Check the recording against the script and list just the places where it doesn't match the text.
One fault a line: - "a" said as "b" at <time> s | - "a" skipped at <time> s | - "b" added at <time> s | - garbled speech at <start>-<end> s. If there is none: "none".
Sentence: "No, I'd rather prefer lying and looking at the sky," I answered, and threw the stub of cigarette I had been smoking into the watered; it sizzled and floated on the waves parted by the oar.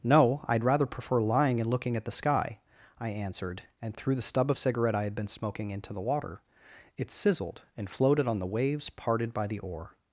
- "watered" said as "water" at 6.0 s